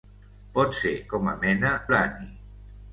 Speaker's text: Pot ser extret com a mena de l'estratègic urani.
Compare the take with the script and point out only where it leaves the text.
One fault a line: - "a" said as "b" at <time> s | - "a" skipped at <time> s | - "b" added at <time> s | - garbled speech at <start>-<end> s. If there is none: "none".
- "extret" skipped at 0.9 s
- "de l'estratègic" skipped at 1.7 s